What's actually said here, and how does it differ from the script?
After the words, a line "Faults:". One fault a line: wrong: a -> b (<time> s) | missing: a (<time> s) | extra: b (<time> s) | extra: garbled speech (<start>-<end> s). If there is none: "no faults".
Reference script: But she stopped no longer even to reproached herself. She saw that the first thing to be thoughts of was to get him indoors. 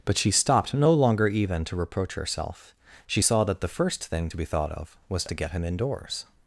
But she stopped no longer even to reproach herself. She saw that the first thing to be thought of was to get him indoors.
Faults:
wrong: reproached -> reproach (1.8 s)
wrong: thoughts -> thought (4.5 s)